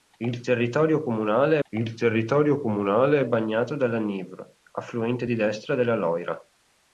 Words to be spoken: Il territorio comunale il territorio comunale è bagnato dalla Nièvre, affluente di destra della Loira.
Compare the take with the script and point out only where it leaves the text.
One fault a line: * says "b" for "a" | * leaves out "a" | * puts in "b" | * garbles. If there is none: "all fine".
all fine